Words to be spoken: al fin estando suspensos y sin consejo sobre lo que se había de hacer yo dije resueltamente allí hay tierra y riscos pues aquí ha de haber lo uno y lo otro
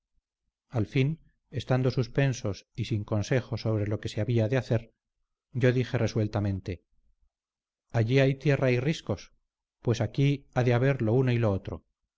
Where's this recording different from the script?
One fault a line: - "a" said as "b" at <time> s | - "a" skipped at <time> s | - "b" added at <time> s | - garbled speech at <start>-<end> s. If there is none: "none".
none